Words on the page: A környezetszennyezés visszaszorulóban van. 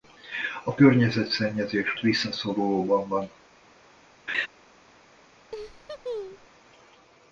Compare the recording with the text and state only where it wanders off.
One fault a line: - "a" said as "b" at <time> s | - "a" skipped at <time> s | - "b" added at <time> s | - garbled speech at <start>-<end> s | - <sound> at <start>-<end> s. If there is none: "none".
- laugh at 4.3-4.5 s
- laugh at 5.5-6.5 s